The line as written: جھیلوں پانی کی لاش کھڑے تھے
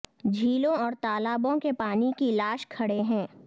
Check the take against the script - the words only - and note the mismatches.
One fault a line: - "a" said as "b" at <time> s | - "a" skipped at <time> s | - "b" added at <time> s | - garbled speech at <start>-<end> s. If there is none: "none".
- "اور تالابوں کے" added at 0.7 s
- "تھے" said as "ہیں" at 3.0 s